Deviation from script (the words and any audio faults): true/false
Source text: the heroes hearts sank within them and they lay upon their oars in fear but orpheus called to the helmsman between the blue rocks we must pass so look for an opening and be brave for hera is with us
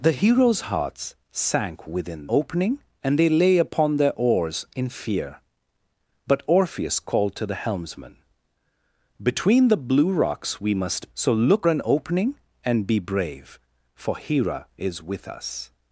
true